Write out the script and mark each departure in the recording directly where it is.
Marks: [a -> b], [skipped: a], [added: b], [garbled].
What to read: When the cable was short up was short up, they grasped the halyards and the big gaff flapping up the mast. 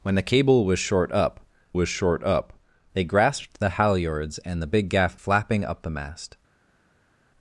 When the cable was short up was short up, they grasped the halyards and the big gaff flapping up the mast.